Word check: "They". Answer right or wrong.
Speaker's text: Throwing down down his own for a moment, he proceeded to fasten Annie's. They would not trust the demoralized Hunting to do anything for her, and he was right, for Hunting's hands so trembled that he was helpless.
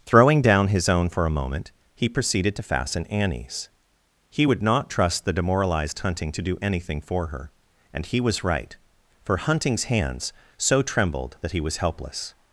wrong